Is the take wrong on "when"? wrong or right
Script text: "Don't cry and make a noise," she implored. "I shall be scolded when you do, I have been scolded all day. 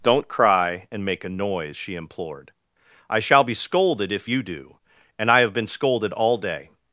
wrong